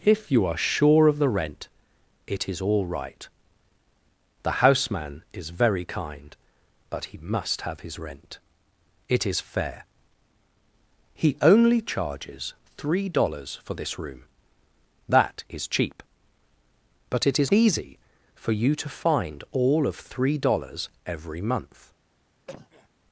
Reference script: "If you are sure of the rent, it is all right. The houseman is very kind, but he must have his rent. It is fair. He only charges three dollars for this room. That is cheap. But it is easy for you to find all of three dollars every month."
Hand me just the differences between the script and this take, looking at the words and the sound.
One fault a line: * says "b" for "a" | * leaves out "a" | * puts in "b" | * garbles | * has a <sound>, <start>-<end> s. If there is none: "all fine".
* has a cough, 22.5-22.9 s